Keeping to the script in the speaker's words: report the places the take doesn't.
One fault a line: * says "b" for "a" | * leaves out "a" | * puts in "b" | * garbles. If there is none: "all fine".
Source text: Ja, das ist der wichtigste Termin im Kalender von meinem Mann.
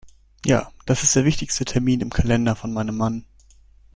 all fine